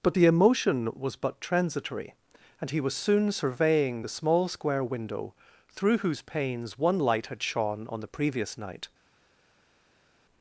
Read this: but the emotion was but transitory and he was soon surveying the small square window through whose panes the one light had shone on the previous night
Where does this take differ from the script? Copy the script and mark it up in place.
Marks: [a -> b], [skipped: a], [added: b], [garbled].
but the emotion was but transitory and he was soon surveying the small square window through whose panes [skipped: the] one light had shone on the previous night